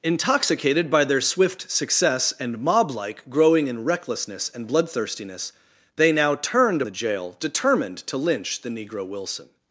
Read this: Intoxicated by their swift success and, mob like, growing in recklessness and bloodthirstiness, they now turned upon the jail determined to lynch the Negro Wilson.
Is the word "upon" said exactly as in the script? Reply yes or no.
no